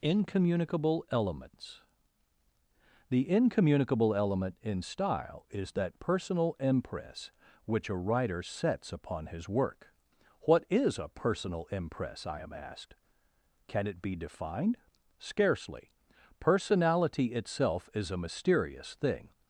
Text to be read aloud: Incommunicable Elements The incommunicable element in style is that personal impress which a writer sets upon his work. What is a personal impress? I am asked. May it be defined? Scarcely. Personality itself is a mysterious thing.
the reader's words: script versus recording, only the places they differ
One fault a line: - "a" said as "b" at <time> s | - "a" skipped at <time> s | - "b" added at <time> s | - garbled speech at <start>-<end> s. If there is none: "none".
- "May" said as "Can" at 13.7 s